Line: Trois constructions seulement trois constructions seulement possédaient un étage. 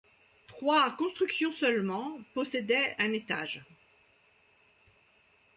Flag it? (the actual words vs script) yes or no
yes